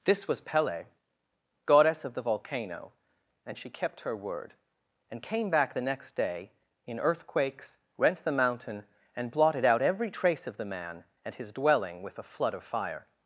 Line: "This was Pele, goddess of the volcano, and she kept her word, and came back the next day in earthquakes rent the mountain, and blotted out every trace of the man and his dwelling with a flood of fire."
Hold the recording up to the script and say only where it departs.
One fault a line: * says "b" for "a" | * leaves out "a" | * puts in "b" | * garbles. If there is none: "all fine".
all fine